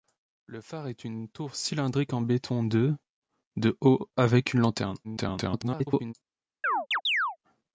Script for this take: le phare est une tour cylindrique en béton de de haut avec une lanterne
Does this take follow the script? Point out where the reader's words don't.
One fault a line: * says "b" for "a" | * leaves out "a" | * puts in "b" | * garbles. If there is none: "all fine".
* garbles